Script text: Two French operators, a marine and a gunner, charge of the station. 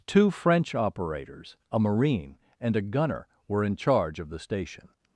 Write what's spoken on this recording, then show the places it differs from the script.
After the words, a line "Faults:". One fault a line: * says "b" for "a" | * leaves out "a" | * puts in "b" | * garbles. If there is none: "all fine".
Two French operators, a marine and a gunner, were in charge of the station.
Faults:
* puts in "were in"